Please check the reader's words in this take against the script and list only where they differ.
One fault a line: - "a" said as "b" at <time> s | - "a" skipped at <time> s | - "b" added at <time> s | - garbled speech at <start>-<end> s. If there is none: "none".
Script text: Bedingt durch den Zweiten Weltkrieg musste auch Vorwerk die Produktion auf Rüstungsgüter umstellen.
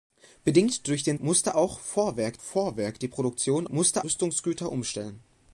- "Zweiten Weltkrieg" skipped at 1.2 s
- "Vorwerk" added at 2.4 s
- "auf" said as "musste" at 3.7 s